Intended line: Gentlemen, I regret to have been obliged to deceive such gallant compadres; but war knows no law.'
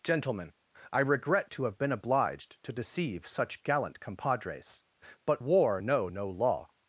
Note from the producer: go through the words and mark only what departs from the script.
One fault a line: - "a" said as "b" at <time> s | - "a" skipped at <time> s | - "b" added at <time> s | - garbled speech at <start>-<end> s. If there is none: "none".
- "knows" said as "know" at 5.8 s